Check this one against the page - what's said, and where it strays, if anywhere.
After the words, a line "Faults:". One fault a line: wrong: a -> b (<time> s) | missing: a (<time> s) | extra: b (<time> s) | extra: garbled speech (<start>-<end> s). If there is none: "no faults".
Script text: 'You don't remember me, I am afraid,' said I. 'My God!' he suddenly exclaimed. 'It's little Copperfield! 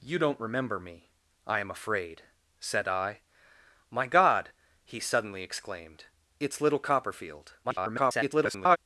'You don't remember me, I am afraid,' said I. 'My God!' he suddenly exclaimed. 'It's little Copperfield! [garbled]
Faults:
extra: garbled speech (7.6-8.8 s)